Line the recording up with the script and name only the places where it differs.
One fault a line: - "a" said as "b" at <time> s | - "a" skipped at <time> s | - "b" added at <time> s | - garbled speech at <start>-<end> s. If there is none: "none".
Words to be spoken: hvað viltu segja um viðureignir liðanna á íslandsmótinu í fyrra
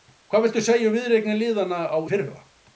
- "íslandsmótinu" skipped at 2.0 s